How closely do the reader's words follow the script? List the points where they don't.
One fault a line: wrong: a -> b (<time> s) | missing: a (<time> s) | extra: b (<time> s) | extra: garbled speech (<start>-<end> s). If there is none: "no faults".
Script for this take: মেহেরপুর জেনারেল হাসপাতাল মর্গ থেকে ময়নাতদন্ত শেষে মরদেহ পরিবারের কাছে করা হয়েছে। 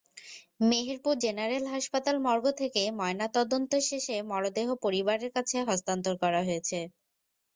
extra: হস্তান্তর (5.7 s)